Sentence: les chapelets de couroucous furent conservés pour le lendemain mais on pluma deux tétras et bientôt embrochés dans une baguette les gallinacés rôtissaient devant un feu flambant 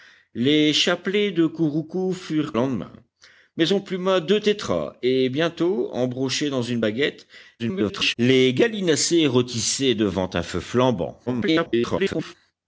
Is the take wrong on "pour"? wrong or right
wrong